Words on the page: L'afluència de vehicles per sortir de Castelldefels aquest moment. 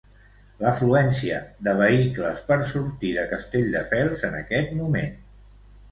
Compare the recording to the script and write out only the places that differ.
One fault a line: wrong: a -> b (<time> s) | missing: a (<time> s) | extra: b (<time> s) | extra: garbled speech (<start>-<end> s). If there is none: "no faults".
extra: en (4.3 s)